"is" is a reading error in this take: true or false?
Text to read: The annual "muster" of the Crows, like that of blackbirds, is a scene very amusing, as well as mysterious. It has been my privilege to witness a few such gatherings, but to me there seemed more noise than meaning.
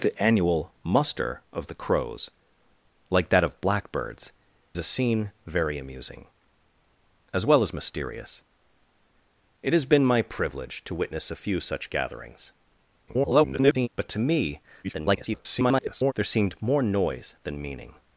true